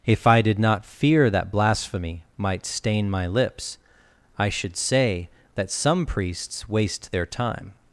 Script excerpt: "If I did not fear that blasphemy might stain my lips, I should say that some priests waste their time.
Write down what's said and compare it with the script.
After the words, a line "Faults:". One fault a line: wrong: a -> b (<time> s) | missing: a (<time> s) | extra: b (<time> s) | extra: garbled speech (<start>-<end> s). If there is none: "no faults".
"If I did not fear that blasphemy might stain my lips, I should say that some priests waste their time.
Faults:
no faults